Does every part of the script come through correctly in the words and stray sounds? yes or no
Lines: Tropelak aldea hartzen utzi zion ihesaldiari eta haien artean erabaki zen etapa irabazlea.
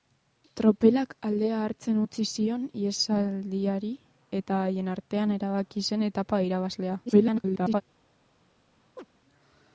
no